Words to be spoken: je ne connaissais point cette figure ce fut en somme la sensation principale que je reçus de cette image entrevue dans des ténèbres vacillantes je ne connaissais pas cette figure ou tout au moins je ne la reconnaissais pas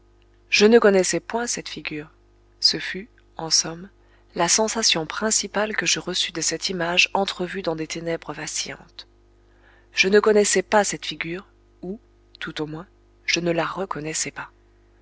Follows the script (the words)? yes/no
yes